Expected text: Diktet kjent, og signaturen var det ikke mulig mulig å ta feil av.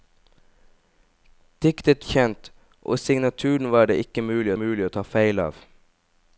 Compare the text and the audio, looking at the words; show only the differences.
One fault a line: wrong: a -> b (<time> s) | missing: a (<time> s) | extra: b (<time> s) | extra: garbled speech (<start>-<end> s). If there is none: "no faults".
no faults